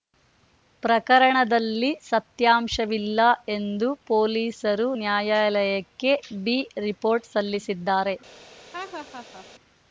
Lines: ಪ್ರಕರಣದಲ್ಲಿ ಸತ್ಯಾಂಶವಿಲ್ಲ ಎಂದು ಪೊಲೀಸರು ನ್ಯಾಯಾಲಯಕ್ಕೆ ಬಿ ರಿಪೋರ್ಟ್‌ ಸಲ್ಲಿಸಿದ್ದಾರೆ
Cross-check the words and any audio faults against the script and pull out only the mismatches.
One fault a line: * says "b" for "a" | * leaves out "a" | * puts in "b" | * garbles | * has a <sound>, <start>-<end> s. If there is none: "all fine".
* has a laugh, 8.7-9.5 s